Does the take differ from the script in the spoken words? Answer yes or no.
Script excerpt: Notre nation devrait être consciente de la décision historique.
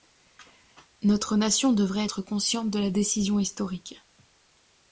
no